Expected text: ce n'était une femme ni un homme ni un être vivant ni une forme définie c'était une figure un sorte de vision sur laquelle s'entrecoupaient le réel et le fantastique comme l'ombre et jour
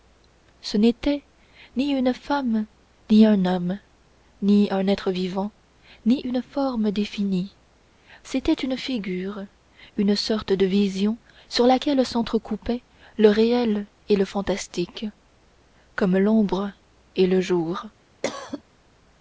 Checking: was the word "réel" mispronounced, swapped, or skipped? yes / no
no